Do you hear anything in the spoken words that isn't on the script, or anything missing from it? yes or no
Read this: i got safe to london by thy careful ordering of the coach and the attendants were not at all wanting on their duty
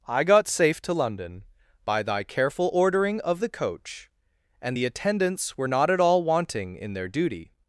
yes